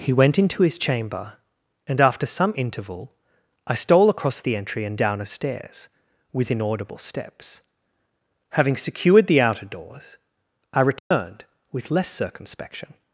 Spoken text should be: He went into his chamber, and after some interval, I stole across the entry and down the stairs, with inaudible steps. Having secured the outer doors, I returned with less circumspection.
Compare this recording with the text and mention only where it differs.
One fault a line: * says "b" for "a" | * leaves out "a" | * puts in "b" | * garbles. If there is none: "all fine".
* says "a" for "the"